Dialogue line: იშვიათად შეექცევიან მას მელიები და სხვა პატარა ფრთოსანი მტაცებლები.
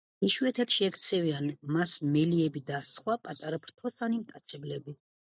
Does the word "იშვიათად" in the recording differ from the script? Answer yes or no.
no